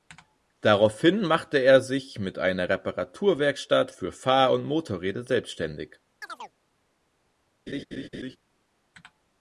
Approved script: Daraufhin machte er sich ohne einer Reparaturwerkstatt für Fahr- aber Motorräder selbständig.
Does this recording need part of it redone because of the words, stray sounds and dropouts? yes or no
yes